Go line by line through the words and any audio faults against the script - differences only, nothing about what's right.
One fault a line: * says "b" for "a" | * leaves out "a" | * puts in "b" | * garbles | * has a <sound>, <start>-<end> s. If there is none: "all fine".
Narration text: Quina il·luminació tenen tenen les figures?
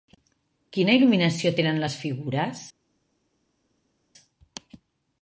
* leaves out "tenen"